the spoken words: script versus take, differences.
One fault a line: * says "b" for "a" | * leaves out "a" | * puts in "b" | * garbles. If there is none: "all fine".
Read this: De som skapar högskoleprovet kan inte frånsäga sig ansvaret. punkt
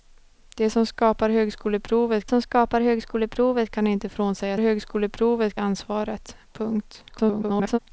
* puts in "som skapar högskoleprovet"
* says "högskoleprovet" for "sig"
* garbles